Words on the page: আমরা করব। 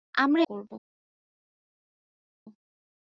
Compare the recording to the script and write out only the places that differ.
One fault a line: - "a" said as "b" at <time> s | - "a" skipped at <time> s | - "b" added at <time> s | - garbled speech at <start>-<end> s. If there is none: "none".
none